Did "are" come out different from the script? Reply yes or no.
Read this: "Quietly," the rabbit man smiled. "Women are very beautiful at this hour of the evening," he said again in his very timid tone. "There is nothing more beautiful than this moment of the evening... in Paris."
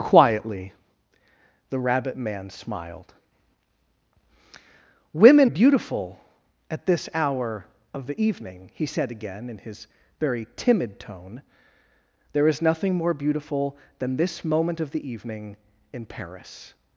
yes